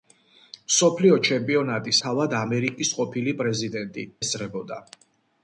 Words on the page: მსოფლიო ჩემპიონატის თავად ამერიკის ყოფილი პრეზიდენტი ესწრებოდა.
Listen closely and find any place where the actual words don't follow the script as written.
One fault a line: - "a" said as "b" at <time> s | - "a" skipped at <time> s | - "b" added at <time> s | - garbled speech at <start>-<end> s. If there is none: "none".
none